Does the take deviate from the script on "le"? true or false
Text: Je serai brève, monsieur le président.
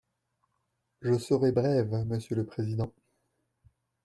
false